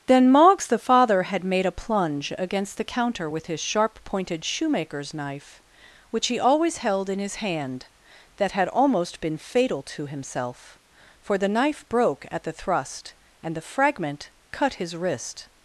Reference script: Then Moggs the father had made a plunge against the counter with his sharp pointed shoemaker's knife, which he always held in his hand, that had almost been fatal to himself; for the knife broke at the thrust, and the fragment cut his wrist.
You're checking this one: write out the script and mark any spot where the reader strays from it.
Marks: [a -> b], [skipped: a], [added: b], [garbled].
Then Moggs the father had made a plunge against the counter with his sharp pointed shoemaker's knife, which he always held in his hand, that had almost been fatal to himself; for the knife broke at the thrust, and the fragment cut his wrist.